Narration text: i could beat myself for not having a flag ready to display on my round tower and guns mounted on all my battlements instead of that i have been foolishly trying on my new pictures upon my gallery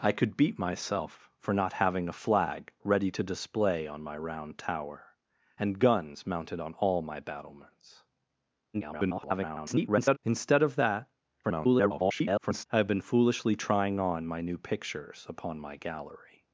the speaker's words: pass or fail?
fail